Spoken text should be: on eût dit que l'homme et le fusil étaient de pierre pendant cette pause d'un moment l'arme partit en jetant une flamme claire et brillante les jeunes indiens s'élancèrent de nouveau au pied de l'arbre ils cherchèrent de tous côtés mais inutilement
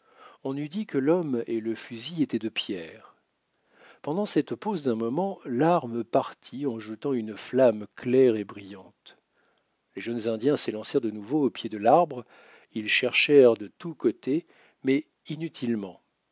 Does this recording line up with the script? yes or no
yes